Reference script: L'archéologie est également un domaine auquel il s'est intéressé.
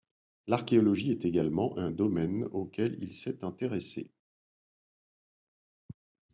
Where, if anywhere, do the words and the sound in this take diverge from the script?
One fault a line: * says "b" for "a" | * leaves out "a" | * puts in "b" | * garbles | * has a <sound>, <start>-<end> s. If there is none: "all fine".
all fine